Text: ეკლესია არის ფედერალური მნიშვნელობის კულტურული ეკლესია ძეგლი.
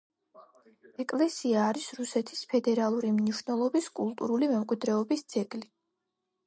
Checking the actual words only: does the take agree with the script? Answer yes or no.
no